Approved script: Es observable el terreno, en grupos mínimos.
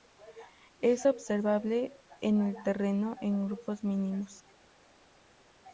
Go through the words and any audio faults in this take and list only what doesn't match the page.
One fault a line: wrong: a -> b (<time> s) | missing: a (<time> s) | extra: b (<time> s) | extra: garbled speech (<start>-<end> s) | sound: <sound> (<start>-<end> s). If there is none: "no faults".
extra: en (2.2 s)